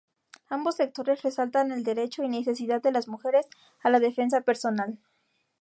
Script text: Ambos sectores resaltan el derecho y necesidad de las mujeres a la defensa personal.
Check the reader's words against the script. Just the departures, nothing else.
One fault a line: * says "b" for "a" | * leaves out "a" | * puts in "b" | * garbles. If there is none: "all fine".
all fine